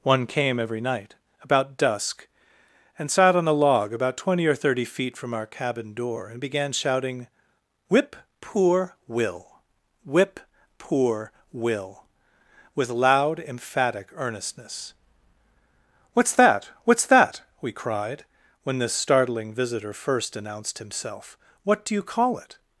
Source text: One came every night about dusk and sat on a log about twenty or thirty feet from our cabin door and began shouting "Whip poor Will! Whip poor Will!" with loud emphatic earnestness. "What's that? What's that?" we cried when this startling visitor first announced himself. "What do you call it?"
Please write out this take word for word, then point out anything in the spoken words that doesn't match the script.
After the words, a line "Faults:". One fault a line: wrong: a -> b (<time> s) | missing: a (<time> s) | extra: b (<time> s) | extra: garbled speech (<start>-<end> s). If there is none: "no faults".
One came every night about dusk and sat on a log about twenty or thirty feet from our cabin door and began shouting "Whip poor Will! Whip poor Will!" with loud emphatic earnestness. "What's that? What's that?" we cried when this startling visitor first announced himself. "What do you call it?"
Faults:
no faults